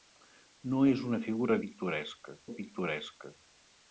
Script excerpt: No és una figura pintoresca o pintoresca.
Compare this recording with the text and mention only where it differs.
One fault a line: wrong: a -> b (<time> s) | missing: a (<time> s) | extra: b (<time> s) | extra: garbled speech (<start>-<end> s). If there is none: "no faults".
no faults